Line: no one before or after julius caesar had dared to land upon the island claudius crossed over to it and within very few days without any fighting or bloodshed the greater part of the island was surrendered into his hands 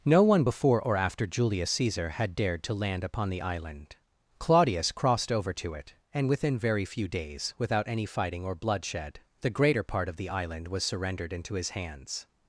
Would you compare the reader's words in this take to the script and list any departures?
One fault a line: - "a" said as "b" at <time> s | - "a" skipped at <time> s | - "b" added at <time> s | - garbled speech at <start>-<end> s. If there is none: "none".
none